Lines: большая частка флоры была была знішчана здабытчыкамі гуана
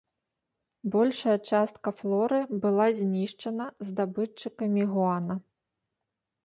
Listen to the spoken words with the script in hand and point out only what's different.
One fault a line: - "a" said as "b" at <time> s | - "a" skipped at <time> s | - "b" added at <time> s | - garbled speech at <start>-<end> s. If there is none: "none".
- "была" skipped at 2.9 s